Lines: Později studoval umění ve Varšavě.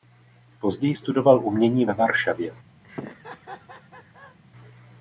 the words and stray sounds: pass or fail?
fail